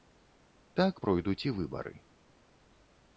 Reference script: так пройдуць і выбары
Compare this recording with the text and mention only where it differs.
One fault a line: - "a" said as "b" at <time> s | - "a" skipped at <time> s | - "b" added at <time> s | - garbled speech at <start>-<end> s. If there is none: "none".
none